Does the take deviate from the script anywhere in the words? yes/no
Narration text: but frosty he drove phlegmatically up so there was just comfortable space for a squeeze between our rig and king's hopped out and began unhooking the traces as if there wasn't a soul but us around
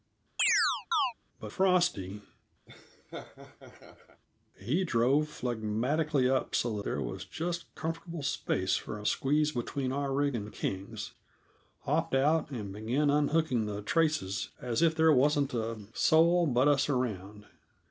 no